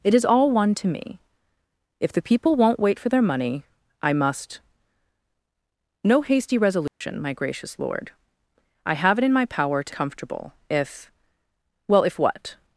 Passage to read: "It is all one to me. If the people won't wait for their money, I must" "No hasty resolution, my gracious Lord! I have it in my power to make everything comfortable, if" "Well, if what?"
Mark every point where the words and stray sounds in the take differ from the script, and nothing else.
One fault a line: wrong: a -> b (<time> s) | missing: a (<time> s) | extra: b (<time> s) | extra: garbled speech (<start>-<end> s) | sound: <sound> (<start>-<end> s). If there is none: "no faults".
sound: dropout (6.9-7.0 s)
missing: make everything (9.9 s)